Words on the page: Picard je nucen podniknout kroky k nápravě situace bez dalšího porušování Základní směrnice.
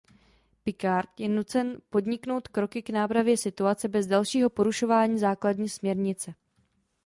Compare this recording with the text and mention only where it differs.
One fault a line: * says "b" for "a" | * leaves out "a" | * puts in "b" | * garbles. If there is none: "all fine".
all fine